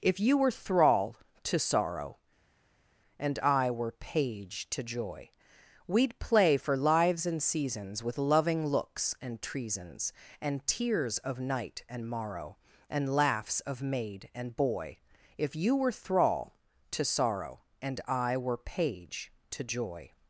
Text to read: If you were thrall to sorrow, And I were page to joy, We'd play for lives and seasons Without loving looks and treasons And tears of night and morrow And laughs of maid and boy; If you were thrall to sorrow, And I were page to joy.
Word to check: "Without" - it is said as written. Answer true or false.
false